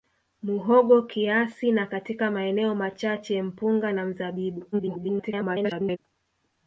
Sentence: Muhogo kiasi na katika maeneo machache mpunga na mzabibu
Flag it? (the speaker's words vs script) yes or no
yes